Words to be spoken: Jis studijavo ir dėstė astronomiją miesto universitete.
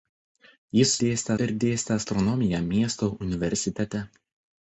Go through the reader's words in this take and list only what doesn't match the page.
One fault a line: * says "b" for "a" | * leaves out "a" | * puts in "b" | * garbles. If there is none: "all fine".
* says "dėstė" for "studijavo"